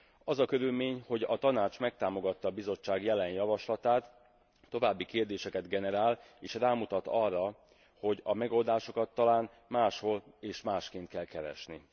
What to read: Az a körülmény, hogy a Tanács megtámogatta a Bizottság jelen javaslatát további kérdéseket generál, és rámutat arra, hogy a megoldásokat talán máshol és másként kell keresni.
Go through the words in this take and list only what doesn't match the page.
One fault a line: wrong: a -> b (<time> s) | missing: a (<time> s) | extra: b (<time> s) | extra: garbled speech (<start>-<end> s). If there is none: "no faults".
no faults